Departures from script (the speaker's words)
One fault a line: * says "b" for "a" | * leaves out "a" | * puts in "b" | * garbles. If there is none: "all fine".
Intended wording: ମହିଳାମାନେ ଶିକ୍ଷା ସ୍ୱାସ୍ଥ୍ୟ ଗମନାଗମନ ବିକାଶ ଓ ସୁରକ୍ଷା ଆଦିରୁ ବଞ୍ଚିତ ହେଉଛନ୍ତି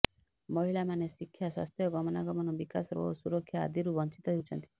all fine